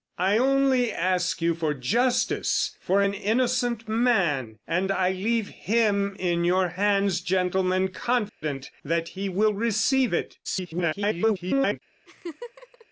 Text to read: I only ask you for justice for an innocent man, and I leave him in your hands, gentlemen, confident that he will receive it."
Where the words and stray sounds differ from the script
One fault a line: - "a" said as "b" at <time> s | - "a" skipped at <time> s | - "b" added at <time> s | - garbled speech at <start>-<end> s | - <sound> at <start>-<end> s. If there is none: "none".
- dropout at 8.3-8.4 s
- garbled speech at 10.4-11.8 s
- laugh at 12.1-12.9 s